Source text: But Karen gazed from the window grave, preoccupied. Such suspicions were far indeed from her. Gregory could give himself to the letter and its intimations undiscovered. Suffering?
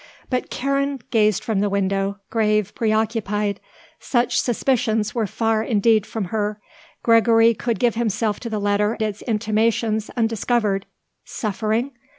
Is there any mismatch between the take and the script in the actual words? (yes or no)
yes